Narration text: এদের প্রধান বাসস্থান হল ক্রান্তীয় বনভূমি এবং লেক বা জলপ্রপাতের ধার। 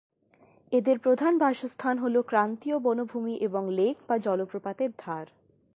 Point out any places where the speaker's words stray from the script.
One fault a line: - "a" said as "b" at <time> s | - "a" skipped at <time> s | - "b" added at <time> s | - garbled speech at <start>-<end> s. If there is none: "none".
none